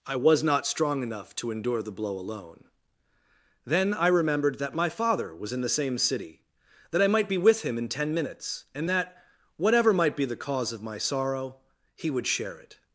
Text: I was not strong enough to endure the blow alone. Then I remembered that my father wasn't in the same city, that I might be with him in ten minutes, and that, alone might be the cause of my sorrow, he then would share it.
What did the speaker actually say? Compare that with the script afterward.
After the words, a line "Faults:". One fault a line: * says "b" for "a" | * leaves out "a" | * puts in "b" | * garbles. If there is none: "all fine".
I was not strong enough to endure the blow alone. Then I remembered that my father was in the same city, that I might be with him in ten minutes, and that, whatever might be the cause of my sorrow, he would share it.
Faults:
* says "was" for "wasn't"
* says "whatever" for "alone"
* leaves out "then"